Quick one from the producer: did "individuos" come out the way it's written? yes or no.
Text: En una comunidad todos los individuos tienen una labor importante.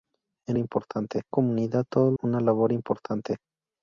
no